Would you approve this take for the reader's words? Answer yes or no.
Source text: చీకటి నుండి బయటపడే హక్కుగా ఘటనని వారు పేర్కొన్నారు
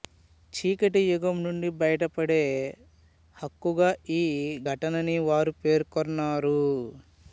no